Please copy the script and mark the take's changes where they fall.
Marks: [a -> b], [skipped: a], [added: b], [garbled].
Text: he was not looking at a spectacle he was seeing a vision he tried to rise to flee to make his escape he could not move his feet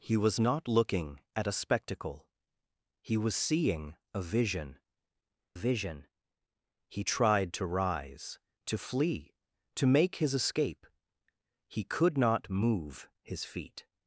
he was not looking at a spectacle he was seeing a vision [added: vision] he tried to rise to flee to make his escape he could not move his feet